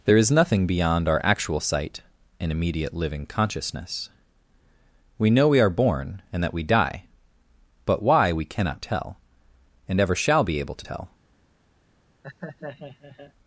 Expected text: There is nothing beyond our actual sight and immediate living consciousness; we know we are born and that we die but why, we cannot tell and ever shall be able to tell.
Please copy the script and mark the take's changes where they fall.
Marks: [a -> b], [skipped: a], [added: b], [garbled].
There is nothing beyond our actual sight and immediate living consciousness; we know we are born and that we die but why, we cannot tell and ever shall be able to tell.